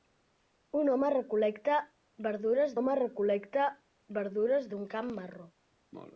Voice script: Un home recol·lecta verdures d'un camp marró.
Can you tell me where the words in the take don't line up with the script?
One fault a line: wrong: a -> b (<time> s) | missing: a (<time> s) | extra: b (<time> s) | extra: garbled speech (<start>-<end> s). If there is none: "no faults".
extra: home recol·lecta verdures (2.8 s)